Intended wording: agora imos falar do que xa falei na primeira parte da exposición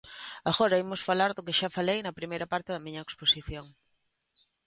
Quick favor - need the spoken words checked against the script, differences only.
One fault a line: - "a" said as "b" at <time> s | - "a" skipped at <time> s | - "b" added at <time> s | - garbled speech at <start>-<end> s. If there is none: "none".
- "miña" added at 2.9 s